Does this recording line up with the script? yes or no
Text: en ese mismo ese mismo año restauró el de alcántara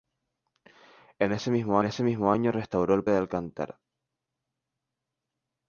yes